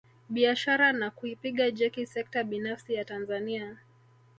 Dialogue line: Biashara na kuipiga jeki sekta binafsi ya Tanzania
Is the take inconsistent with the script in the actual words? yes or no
no